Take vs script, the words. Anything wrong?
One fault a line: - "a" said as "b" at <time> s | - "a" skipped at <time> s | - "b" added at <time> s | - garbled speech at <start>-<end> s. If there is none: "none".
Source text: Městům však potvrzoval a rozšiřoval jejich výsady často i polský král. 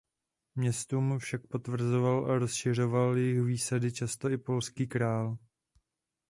none